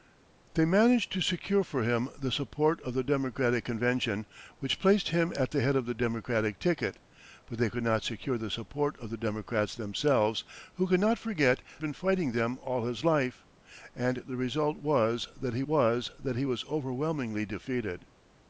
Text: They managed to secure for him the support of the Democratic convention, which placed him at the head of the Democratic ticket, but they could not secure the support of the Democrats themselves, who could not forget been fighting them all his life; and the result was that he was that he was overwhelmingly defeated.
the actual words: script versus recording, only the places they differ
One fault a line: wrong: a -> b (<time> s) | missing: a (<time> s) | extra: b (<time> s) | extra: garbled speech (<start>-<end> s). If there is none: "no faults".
no faults